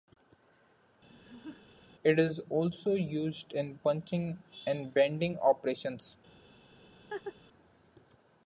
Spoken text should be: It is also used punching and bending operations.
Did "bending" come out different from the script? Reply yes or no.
no